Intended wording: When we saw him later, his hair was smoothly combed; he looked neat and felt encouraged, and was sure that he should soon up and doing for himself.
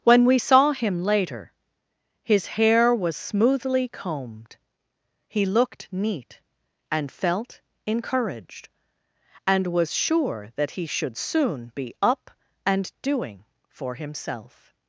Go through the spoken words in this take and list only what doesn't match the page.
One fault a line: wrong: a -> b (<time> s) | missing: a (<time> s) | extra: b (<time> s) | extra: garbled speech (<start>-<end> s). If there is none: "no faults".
extra: be (11.8 s)